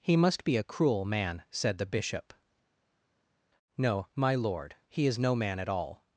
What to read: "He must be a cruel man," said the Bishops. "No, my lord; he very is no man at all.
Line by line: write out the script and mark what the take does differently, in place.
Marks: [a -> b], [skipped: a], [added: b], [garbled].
"He must be a cruel man," said the [Bishops. -> Bishop] "No, my lord; he [skipped: very] is no man at all.